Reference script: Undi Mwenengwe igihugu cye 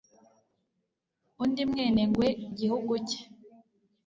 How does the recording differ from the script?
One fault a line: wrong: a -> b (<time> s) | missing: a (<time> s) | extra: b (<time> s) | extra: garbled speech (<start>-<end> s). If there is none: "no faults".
no faults